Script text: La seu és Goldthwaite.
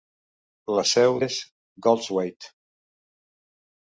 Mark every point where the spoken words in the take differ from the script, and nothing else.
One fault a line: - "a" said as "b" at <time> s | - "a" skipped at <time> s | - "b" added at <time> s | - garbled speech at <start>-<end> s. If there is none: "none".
none